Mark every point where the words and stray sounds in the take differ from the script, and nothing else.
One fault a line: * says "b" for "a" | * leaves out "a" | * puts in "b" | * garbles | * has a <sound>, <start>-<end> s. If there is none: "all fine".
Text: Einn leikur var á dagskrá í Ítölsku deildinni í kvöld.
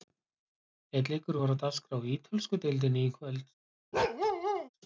* has a bark, 3.9-4.7 s